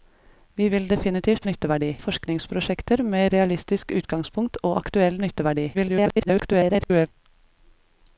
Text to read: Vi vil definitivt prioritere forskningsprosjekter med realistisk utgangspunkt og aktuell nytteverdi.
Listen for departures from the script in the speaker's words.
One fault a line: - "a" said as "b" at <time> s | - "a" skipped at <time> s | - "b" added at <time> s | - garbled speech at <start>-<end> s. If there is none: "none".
- "prioritere" said as "nytteverdi" at 1.5 s
- garbled speech at 5.7-7.1 s